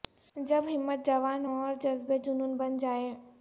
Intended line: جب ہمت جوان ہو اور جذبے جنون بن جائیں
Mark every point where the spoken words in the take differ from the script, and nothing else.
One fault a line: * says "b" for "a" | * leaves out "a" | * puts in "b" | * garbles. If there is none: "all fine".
all fine